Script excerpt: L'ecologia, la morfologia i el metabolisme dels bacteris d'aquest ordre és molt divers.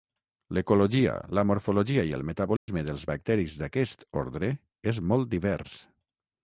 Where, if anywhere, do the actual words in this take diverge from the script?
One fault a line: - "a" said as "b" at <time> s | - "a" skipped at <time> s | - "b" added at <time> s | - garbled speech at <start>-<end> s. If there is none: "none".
none